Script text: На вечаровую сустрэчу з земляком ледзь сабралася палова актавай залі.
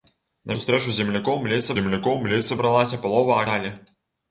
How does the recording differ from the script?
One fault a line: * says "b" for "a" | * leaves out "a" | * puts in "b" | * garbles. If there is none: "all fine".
* leaves out "вечаровую"
* puts in "земляком ледзь"
* leaves out "актавай"